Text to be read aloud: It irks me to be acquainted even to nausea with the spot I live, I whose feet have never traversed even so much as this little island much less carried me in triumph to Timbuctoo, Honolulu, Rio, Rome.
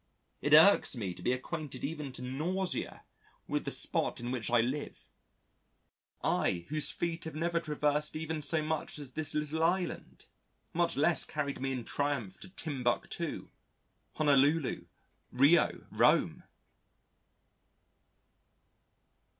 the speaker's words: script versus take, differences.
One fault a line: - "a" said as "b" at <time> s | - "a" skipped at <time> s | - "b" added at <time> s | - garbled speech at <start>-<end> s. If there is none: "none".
- "in which" added at 4.2 s